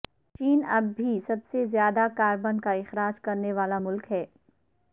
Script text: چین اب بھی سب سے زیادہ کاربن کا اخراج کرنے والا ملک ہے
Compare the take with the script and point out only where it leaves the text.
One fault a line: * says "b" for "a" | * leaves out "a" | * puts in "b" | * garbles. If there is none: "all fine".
all fine